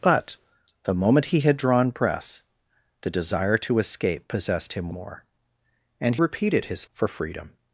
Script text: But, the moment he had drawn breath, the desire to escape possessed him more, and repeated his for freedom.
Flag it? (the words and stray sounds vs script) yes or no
no